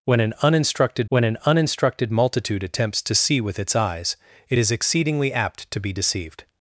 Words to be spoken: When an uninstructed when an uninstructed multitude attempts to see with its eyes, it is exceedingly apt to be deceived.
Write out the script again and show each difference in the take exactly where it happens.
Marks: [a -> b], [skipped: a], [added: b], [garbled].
When an uninstructed when an uninstructed multitude attempts to see with its eyes, it is exceedingly apt to be deceived.